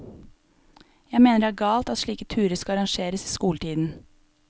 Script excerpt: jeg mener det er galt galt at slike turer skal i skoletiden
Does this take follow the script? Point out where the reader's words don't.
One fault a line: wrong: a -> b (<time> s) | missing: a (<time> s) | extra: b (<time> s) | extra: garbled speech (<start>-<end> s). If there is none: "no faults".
missing: galt (1.9 s)
extra: arrangeres (2.8 s)